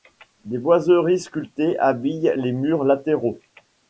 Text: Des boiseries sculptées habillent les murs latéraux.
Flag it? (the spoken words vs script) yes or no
no